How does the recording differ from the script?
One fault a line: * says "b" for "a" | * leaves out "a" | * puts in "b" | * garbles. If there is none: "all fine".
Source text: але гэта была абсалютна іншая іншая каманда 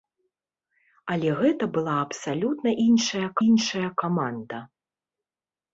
all fine